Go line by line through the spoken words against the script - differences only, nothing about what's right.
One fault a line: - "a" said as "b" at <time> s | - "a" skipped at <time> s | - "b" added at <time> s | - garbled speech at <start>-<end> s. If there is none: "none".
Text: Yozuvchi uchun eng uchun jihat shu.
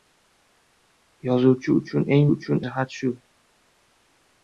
none